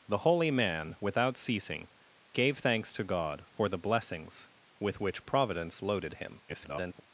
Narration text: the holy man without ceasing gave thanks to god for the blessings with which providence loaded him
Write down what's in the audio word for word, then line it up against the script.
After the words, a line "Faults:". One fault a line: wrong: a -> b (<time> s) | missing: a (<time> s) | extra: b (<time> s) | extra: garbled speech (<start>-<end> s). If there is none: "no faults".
the holy man without ceasing gave thanks to god for the blessings with which providence loaded him [garbled]
Faults:
extra: garbled speech (6.5-7.0 s)